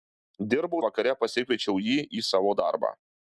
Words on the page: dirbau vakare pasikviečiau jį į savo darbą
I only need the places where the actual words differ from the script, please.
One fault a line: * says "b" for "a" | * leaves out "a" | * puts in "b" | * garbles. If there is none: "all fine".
all fine